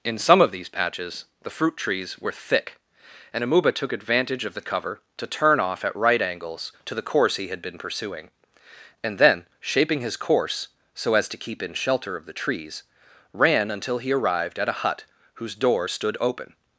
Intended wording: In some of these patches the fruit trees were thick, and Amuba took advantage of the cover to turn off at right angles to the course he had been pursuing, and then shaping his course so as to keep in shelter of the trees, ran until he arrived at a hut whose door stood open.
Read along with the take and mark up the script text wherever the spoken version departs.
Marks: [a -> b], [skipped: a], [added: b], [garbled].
In some of these patches the fruit trees were thick, and Amuba took advantage of the cover to turn off at right angles to the course he had been pursuing, and then shaping his course so as to keep in shelter of the trees, ran until he arrived at a hut whose door stood open.